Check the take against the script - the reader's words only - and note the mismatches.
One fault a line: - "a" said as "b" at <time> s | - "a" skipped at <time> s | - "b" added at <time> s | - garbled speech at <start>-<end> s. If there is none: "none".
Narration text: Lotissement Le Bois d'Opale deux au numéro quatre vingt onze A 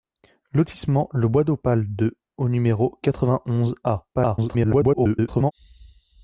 - garbled speech at 4.1-5.5 s